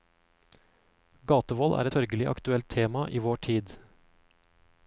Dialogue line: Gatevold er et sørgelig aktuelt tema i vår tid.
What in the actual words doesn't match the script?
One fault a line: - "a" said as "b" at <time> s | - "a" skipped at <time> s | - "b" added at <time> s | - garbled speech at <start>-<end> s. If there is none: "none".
- "et" skipped at 1.9 s